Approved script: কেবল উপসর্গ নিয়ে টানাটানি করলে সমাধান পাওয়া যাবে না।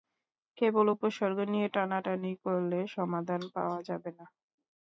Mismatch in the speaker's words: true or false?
false